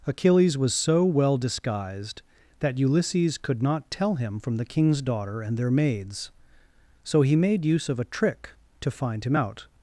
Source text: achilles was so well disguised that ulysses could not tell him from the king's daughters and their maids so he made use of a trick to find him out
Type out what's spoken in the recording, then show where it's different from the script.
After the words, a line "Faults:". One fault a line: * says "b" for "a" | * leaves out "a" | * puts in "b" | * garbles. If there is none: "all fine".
achilles was so well disguised that ulysses could not tell him from the king's daughter and their maids so he made use of a trick to find him out
Faults:
* says "daughter" for "daughters"